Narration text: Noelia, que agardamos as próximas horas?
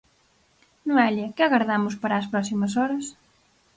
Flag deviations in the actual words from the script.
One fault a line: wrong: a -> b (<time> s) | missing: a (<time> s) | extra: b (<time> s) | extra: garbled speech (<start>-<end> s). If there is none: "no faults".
extra: para (2.0 s)